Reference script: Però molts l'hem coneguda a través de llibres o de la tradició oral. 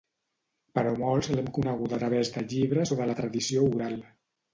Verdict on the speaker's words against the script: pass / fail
pass